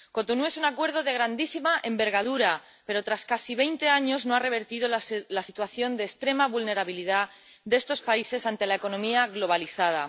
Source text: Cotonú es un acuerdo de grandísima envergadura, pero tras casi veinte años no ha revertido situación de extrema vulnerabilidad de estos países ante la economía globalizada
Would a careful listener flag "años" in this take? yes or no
no